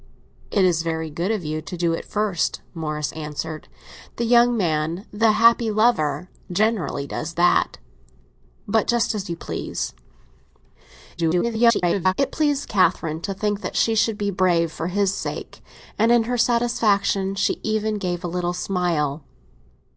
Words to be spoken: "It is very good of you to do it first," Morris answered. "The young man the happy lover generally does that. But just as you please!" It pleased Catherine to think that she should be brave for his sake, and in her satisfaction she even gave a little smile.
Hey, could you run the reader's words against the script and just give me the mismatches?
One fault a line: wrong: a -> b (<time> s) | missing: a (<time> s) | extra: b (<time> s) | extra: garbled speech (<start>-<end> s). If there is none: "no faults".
extra: garbled speech (11.2-12.1 s)